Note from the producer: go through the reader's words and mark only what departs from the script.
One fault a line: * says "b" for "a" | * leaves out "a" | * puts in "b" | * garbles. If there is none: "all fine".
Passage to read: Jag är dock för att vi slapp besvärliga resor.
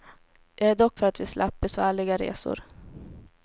all fine